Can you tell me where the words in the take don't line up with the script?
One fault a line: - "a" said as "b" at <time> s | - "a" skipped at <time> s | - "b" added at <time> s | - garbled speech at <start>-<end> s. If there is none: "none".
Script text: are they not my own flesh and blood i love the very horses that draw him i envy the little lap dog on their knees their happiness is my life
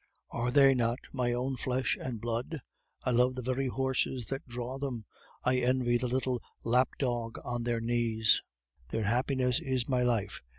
- "him" said as "them" at 4.8 s